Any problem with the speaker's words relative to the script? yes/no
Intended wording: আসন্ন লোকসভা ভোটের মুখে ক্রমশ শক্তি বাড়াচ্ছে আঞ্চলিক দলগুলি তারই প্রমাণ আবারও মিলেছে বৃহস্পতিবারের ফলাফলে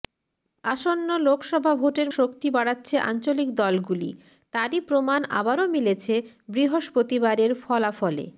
yes